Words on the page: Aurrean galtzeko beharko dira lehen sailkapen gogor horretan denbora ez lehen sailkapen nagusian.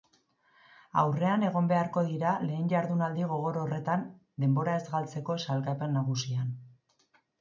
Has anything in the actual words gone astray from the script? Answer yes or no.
yes